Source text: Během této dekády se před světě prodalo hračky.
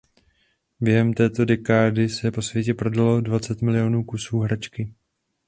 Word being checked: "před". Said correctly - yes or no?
no